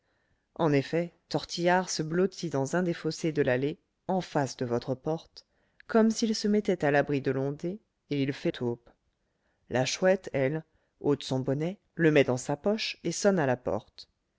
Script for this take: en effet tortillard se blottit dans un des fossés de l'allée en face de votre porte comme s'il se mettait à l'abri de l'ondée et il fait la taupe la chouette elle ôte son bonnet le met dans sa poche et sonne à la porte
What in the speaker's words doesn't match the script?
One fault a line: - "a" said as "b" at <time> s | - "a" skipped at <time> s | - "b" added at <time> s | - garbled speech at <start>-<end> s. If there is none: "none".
- "la" skipped at 8.5 s